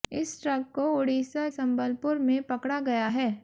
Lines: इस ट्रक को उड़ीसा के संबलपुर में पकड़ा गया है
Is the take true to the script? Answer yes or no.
no